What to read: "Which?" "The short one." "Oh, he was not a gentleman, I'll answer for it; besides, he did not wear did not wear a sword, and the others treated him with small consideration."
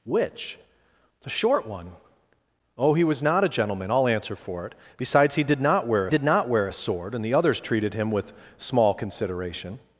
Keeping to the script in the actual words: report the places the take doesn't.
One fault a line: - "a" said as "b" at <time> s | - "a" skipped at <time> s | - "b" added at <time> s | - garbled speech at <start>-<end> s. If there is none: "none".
none